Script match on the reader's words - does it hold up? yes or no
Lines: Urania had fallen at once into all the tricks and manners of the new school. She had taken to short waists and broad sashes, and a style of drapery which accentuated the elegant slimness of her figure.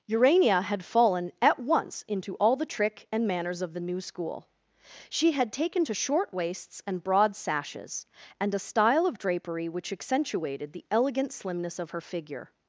no